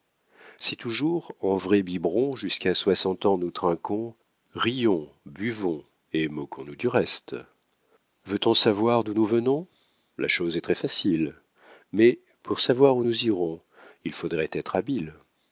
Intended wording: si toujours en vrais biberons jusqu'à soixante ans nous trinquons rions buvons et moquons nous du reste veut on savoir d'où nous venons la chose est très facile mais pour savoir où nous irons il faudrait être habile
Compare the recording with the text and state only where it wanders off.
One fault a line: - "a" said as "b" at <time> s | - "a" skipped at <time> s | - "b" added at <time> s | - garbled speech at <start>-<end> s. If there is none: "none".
none